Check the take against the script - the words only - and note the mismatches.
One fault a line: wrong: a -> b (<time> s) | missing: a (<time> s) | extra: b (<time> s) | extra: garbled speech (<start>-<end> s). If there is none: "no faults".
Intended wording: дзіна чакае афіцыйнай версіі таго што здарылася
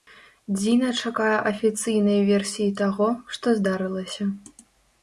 no faults